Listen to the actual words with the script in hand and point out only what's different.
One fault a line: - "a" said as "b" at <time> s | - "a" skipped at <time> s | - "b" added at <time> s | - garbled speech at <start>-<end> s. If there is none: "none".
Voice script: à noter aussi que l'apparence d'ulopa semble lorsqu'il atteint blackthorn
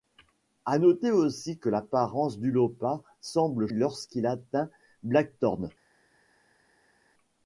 none